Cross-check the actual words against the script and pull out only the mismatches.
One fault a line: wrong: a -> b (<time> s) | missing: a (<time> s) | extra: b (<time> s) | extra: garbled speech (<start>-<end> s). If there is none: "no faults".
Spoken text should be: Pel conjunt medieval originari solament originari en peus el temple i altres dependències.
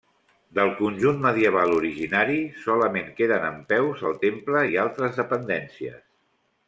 wrong: Pel -> Del (0.6 s)
wrong: originari -> queden (3.2 s)